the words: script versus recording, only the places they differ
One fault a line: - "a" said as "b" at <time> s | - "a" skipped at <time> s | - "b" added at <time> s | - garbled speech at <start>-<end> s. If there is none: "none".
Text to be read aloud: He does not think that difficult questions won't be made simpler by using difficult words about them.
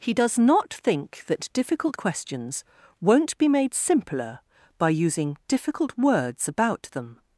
none